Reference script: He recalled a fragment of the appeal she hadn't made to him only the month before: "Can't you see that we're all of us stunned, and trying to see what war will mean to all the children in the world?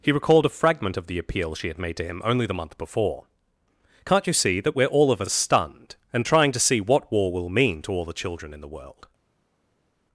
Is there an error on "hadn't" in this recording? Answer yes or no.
yes